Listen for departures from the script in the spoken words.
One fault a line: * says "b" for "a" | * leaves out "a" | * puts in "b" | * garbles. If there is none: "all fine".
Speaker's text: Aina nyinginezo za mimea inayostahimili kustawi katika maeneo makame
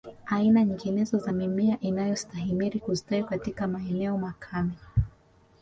all fine